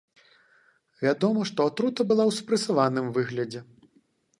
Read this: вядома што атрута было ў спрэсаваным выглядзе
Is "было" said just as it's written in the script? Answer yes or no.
no